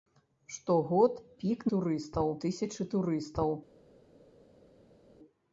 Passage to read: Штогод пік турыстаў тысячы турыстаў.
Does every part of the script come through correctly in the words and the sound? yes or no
yes